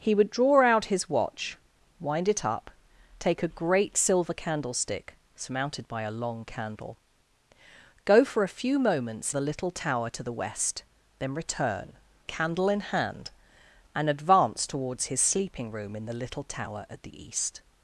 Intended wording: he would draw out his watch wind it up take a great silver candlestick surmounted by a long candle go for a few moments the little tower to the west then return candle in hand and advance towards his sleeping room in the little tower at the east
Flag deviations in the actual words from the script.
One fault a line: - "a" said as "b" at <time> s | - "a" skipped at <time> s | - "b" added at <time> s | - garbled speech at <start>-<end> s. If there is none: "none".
none